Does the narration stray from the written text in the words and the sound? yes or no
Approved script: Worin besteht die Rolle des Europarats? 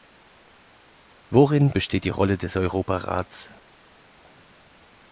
no